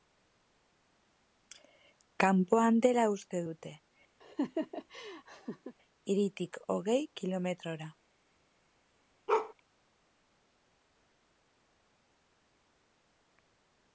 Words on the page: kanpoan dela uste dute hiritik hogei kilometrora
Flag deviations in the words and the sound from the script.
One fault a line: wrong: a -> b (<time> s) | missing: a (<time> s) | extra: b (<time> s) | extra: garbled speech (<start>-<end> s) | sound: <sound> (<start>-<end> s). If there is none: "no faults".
sound: laugh (4.2-5.8 s)
sound: bark (9.3-9.5 s)